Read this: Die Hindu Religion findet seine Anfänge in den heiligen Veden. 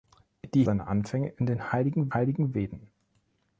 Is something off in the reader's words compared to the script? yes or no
yes